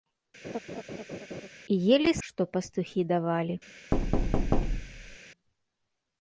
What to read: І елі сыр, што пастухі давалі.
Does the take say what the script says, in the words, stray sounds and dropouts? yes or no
no